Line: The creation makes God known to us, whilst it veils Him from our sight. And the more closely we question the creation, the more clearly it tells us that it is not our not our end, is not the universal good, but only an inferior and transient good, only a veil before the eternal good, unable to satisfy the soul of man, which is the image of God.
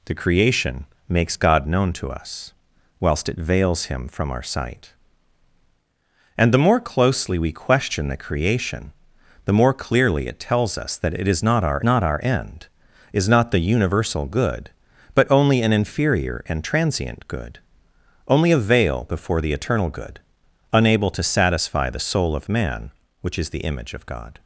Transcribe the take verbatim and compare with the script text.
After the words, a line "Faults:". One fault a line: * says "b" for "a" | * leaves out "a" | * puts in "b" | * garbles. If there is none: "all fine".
The creation makes God known to us, whilst it veils Him from our sight. And the more closely we question the creation, the more clearly it tells us that it is not our not our end, is not the universal good, but only an inferior and transient good, only a veil before the eternal good, unable to satisfy the soul of man, which is the image of God.
Faults:
all fine